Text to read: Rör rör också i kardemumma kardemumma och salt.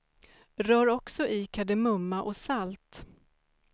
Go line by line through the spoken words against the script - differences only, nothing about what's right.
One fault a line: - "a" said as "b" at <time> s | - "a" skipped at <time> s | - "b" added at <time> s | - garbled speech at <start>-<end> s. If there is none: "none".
- "rör" skipped at 0.9 s
- "kardemumma" skipped at 2.2 s